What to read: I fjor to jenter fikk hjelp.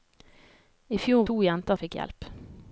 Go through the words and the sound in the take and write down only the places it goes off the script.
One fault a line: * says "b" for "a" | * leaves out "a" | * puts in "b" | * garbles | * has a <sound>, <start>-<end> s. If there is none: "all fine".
all fine